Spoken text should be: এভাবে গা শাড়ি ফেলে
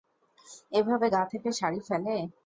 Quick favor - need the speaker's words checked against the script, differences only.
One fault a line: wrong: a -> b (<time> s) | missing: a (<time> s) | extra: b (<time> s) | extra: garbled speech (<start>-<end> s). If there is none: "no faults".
extra: থেকে (1.3 s)